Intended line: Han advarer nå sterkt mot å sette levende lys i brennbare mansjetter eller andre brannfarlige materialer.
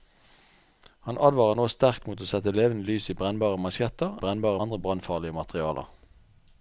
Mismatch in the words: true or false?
true